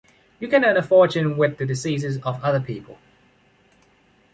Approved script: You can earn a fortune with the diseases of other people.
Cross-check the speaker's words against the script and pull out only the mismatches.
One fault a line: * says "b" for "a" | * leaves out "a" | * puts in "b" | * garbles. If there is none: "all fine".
all fine